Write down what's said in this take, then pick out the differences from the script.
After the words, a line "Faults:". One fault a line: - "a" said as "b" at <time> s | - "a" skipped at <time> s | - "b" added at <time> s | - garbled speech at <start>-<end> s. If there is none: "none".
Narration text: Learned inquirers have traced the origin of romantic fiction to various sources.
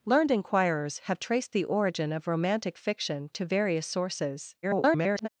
Learned inquirers have traced the origin of romantic fiction to various sources. [garbled]
Faults:
- garbled speech at 4.6-5.3 s